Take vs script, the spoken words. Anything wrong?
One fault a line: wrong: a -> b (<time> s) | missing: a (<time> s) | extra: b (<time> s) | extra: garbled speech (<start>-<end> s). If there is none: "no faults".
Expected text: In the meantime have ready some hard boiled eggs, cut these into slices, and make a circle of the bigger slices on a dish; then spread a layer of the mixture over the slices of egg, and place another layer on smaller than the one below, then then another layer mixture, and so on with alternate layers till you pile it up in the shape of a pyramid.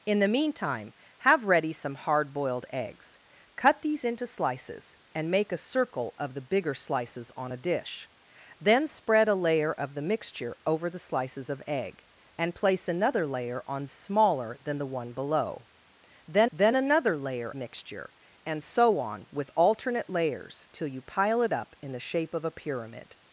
no faults